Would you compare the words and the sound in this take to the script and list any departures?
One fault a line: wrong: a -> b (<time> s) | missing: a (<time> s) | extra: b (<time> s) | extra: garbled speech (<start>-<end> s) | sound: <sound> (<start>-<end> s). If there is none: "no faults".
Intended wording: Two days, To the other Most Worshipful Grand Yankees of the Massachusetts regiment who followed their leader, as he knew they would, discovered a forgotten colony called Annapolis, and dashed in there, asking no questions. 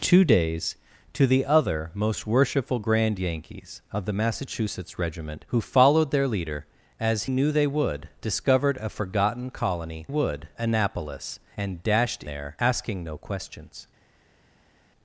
missing: he (7.2 s)
wrong: called -> would (10.1 s)
missing: in (12.2 s)